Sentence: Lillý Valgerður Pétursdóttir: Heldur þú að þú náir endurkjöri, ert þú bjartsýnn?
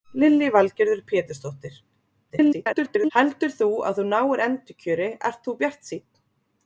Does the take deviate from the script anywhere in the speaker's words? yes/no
yes